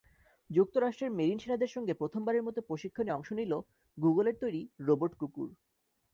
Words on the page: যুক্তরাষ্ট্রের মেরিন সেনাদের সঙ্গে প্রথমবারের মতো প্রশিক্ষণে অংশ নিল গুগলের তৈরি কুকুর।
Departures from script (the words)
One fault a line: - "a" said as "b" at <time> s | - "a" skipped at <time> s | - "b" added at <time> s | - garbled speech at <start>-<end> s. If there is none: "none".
- "রোবট" added at 4.8 s